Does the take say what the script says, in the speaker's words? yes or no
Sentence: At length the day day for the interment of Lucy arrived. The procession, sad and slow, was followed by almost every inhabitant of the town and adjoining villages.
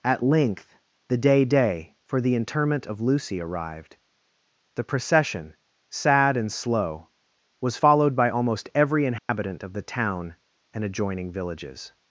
yes